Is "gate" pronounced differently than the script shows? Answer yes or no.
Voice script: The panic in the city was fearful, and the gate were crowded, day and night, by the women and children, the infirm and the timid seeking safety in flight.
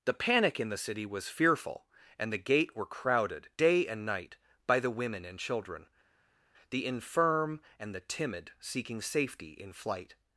no